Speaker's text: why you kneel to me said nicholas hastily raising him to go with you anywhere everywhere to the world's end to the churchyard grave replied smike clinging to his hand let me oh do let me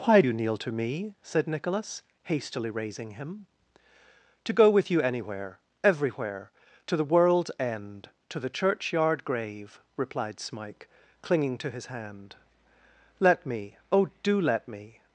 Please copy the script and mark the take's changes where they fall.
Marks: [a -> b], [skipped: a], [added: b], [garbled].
why you kneel to me said nicholas hastily raising him to go with you anywhere everywhere to the world's end to the churchyard grave replied smike clinging to his hand let me oh do let me